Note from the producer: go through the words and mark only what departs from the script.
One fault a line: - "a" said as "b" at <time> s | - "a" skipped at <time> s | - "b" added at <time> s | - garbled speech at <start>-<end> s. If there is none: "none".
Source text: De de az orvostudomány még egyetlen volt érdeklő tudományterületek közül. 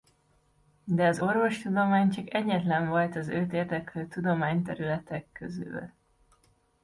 - "de" skipped at 1.1 s
- "még" said as "csak" at 2.1 s
- "az őt" added at 3.2 s